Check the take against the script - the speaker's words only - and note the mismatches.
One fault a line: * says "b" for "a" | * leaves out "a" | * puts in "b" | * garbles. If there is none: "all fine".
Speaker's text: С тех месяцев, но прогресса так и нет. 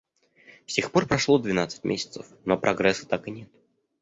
* puts in "пор прошло двенадцать"